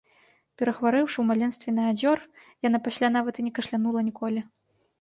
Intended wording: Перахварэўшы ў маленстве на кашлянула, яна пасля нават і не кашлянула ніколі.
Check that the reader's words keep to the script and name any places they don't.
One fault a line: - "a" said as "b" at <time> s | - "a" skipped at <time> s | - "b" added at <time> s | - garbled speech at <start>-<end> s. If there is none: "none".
- "кашлянула" said as "адзёр" at 1.9 s